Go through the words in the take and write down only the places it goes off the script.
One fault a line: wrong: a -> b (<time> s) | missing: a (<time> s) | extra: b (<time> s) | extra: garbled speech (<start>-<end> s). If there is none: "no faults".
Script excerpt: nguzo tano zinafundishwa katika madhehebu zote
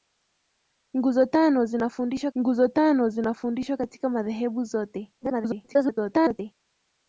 extra: nguzo tano zinafundishwa (2.4 s)
extra: garbled speech (5.2-6.5 s)